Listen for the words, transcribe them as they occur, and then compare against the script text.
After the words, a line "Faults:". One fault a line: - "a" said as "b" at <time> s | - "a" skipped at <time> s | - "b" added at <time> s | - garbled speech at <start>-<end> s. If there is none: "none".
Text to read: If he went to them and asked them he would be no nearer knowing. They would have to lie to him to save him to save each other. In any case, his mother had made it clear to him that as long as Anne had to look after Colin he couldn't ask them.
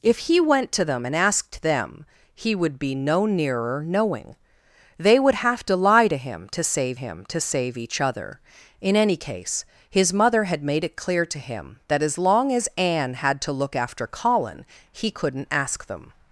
If he went to them and asked them he would be no nearer knowing. They would have to lie to him to save him to save each other. In any case, his mother had made it clear to him that as long as Anne had to look after Colin he couldn't ask them.
Faults:
none